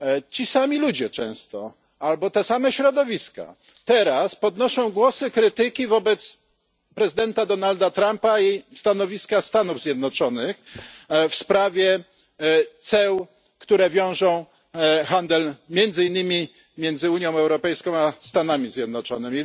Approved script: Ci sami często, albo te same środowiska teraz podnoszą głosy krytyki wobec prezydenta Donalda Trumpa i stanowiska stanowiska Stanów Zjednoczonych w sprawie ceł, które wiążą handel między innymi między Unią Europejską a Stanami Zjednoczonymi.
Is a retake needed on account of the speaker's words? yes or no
yes